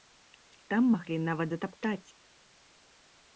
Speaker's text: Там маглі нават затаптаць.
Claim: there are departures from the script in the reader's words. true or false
false